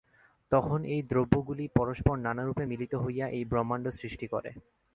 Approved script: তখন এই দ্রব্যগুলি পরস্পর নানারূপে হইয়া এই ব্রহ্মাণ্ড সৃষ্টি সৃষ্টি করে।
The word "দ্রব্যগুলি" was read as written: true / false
true